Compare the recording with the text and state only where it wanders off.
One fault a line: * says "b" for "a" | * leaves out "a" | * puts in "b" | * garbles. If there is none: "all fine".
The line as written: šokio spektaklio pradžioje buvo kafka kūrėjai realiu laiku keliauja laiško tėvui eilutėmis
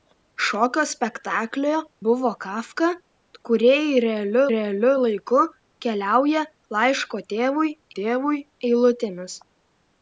* leaves out "pradžioje"
* puts in "realiu"
* puts in "tėvui"